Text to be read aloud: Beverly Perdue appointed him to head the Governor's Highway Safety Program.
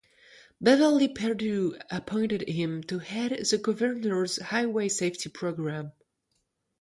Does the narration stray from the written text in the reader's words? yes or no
no